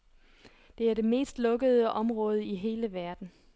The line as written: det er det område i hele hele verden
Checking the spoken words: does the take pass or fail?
fail